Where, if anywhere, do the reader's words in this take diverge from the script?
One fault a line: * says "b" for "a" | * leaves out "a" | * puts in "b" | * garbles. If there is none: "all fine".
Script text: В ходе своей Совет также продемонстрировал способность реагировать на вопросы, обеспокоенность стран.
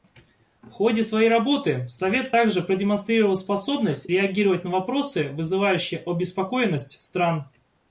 * puts in "работы"
* puts in "вызывающие"